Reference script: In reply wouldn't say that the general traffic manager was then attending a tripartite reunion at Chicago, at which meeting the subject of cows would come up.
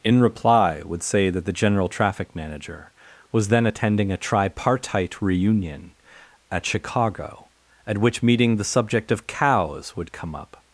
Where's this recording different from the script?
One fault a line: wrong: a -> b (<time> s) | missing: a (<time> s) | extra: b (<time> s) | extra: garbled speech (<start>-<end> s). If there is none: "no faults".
wrong: wouldn't -> would (0.8 s)